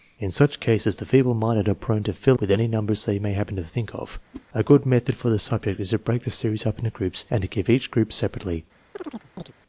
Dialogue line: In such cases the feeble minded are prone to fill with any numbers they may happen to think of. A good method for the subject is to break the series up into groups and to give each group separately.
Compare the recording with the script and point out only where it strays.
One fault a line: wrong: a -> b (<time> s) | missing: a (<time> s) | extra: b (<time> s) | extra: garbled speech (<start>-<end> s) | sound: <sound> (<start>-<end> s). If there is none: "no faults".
sound: whoosh (4.3-4.4 s)
sound: chirp (8.9-9.5 s)